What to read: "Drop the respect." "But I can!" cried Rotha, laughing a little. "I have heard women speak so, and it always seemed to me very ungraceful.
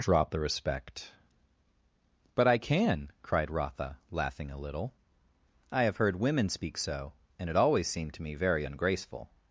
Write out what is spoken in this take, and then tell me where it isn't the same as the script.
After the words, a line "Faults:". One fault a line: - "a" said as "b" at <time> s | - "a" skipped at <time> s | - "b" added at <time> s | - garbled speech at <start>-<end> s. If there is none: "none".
"Drop the respect." "But I can!" cried Rotha, laughing a little. "I have heard women speak so, and it always seemed to me very ungraceful.
Faults:
none